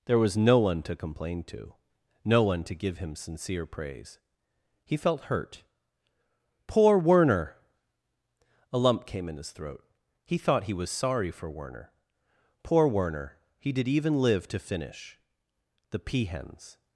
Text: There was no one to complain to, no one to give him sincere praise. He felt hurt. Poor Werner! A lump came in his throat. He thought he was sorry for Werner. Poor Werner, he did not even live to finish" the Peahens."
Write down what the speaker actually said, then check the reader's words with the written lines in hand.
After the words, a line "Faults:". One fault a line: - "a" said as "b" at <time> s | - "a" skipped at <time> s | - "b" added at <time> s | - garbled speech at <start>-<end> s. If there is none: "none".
There was no one to complain to, no one to give him sincere praise. He felt hurt. Poor Werner! A lump came in his throat. He thought he was sorry for Werner. Poor Werner, he did even live to finish" the Peahens."
Faults:
- "not" skipped at 13.9 s